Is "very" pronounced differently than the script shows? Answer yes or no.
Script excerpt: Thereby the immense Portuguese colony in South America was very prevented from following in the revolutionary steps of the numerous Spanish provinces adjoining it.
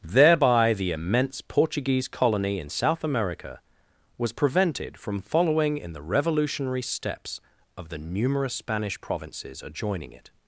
yes